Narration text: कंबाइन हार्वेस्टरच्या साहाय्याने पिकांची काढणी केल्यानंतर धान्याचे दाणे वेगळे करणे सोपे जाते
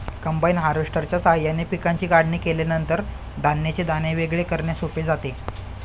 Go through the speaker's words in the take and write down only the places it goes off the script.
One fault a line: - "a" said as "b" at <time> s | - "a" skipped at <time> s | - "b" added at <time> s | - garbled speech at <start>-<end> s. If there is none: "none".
none